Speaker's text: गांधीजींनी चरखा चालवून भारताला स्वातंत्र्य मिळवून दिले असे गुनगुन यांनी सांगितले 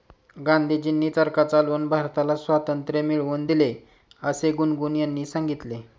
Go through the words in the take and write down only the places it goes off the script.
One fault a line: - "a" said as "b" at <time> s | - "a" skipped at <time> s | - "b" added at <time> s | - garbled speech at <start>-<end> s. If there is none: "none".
none